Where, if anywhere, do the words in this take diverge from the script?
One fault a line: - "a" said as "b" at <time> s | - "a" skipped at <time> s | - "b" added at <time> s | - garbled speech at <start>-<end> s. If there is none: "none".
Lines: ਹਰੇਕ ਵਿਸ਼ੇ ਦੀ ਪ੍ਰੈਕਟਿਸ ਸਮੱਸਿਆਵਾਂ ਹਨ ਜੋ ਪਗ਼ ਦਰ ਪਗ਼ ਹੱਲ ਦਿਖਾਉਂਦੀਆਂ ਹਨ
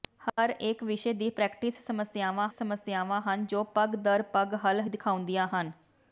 - "ਸਮੱਸਿਆਵਾਂ" added at 2.5 s